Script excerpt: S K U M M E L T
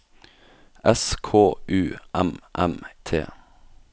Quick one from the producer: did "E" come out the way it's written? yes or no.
no